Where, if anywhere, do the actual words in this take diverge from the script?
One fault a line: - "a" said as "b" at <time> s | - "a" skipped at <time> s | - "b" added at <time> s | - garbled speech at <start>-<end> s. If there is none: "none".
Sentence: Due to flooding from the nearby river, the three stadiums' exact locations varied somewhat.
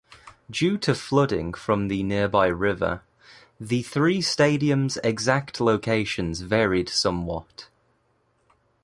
none